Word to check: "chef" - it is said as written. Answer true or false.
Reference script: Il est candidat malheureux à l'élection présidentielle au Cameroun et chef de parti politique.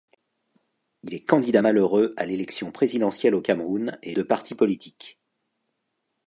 false